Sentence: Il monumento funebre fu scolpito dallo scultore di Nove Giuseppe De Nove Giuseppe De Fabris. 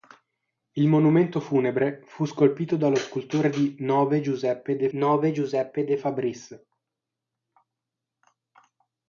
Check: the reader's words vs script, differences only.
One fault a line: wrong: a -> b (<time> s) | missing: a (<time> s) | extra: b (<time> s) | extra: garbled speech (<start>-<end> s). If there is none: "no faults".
no faults